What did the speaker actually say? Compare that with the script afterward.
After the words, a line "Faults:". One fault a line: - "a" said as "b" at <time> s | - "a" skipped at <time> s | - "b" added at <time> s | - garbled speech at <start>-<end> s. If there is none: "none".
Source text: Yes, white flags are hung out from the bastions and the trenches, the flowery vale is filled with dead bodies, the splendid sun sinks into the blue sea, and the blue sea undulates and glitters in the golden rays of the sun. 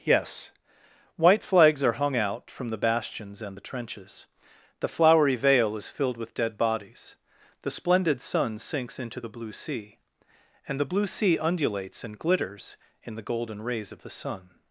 Yes, white flags are hung out from the bastions and the trenches, the flowery vale is filled with dead bodies, the splendid sun sinks into the blue sea, and the blue sea undulates and glitters in the golden rays of the sun.
Faults:
none